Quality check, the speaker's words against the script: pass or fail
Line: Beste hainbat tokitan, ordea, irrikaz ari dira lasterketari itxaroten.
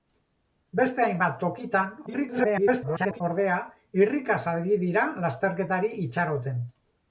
fail